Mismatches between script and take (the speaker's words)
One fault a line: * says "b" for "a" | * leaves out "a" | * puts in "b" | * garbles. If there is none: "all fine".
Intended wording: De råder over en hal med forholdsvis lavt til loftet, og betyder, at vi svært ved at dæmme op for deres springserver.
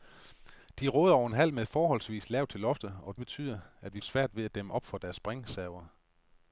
all fine